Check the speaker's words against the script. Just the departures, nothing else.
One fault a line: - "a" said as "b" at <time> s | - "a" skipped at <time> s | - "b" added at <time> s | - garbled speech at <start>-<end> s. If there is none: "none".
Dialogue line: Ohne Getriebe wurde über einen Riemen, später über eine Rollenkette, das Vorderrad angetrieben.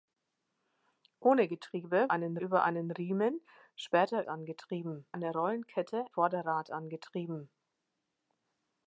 - "wurde" said as "einen" at 2.1 s
- "über" said as "angetrieben" at 4.3 s
- "das" skipped at 6.0 s